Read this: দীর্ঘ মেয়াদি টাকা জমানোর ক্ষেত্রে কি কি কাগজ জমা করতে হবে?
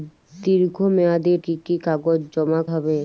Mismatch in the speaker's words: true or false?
true